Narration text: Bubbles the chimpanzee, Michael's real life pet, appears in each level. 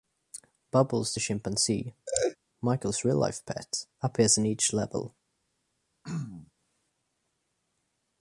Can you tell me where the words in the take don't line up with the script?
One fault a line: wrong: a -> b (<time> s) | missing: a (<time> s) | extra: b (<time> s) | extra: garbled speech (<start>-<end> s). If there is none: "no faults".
no faults